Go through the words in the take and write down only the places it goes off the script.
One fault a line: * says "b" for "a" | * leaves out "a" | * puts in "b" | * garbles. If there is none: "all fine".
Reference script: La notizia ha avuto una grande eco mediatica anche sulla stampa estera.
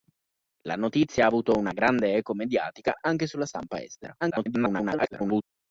* garbles